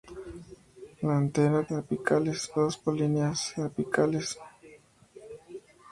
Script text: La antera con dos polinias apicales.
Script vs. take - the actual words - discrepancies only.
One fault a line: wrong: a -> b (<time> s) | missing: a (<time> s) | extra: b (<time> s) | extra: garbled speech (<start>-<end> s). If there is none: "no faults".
wrong: con -> apicales (1.7 s)